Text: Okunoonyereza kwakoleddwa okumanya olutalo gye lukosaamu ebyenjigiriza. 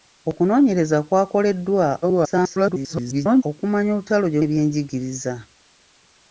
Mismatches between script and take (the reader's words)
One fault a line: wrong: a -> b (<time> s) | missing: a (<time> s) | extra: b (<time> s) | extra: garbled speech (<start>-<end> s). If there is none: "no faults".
extra: garbled speech (2.0-3.4 s)
missing: lukosaamu (4.4 s)